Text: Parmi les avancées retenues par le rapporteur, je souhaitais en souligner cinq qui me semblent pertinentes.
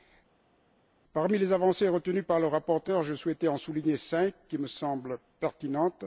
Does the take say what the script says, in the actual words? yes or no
yes